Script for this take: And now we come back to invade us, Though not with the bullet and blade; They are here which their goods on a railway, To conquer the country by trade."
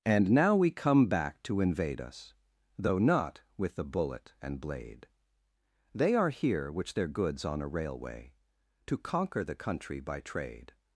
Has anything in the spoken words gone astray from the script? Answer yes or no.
no